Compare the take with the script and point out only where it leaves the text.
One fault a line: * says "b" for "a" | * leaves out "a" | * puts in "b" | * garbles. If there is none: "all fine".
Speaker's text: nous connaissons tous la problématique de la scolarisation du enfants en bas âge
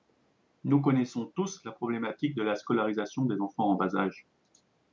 * says "des" for "du"